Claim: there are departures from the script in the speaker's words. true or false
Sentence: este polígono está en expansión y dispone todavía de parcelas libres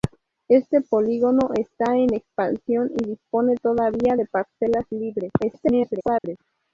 true